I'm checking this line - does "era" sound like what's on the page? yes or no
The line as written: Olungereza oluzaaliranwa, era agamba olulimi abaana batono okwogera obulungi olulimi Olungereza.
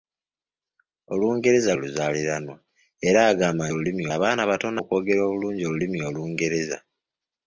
yes